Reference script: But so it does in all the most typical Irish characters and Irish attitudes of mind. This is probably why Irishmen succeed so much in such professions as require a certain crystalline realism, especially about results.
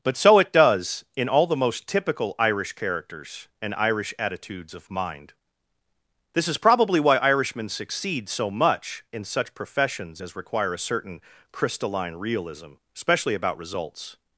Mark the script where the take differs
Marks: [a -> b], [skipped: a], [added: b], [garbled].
But so it does in all the most typical Irish characters and Irish attitudes of mind. This is probably why Irishmen succeed so much in such professions as require a certain crystalline realism, especially about results.